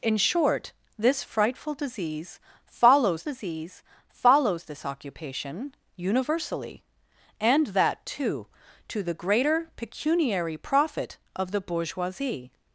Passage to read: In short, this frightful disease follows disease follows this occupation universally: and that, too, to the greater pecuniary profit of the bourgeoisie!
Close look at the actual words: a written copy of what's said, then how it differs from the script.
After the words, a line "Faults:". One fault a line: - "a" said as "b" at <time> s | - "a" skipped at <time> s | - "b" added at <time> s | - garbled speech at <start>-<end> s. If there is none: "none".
In short, this frightful disease follows disease follows this occupation universally: and that, too, to the greater pecuniary profit of the bourgeoisie!
Faults:
none